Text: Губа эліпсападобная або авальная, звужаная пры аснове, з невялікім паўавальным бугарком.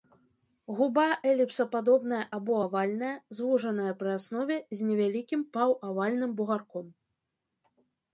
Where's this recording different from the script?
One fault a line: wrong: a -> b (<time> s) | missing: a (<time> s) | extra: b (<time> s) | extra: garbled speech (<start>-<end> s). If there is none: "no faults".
no faults